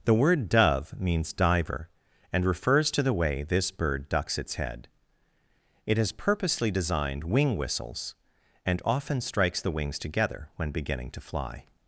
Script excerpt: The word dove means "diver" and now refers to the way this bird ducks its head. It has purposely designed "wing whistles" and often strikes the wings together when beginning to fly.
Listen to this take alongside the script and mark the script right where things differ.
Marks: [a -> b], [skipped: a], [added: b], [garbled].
The word dove means "diver" and [skipped: now] refers to the way this bird ducks its head. It has purposely designed "wing whistles" and often strikes the wings together when beginning to fly.